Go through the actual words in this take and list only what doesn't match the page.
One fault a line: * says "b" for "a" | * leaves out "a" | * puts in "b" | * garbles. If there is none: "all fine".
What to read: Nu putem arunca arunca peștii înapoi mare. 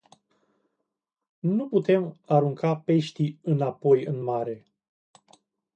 * leaves out "arunca"
* puts in "în"